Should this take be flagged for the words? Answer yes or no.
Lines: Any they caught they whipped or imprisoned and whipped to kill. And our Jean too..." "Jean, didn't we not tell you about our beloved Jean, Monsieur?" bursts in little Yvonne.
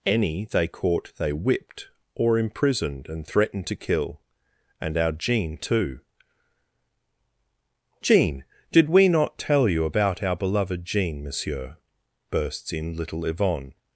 yes